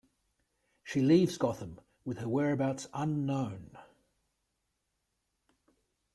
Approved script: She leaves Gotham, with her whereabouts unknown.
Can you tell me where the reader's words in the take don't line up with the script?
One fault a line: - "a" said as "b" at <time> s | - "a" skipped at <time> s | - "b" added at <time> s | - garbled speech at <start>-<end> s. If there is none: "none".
none